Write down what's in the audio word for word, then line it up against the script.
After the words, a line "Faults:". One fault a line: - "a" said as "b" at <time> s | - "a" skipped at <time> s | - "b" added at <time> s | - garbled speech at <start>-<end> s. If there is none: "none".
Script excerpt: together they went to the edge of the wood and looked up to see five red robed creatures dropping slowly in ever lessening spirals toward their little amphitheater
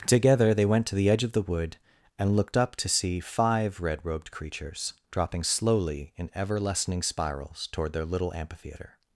together they went to the edge of the wood and looked up to see five red robed creatures dropping slowly in ever lessening spirals toward their little amphitheater
Faults:
none